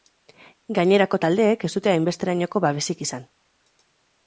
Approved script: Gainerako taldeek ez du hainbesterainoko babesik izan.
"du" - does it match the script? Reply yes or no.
no